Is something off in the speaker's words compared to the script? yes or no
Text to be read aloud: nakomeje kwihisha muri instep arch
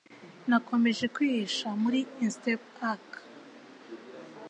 no